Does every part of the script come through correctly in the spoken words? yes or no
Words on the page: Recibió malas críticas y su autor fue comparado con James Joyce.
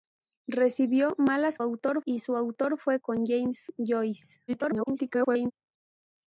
no